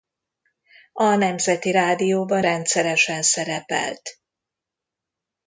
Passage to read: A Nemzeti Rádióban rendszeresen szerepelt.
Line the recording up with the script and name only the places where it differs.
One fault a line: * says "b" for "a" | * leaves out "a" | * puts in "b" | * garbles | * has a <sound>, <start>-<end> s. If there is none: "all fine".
all fine